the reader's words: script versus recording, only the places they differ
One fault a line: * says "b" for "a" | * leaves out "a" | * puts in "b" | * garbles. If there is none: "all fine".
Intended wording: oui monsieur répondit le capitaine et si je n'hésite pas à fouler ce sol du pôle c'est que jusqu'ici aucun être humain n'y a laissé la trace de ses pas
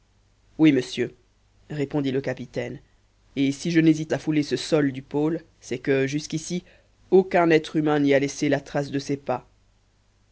* leaves out "pas"